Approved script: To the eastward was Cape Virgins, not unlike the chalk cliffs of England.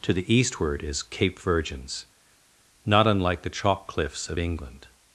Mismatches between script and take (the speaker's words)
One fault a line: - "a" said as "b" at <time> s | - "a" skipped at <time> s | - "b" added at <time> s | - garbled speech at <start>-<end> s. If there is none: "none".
- "was" said as "is" at 0.8 s